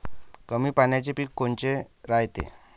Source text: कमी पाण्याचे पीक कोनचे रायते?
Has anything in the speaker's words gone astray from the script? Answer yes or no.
no